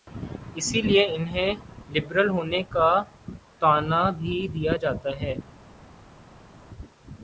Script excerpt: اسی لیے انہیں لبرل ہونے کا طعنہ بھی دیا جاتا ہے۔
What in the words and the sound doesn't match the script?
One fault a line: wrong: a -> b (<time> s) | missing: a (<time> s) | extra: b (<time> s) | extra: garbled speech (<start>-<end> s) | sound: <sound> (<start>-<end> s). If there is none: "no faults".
no faults